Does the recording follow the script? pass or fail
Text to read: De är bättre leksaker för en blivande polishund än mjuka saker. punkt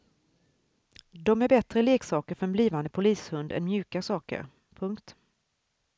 pass